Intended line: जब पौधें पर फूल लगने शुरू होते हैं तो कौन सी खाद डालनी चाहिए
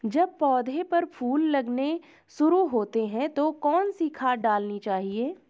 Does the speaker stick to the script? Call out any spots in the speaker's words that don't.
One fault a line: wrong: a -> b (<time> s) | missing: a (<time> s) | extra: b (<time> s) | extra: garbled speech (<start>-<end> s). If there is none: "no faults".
no faults